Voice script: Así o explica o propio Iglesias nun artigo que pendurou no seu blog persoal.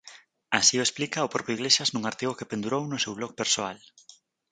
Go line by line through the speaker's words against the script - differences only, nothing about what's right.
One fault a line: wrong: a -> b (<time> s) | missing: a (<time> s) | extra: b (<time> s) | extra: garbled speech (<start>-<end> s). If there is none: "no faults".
no faults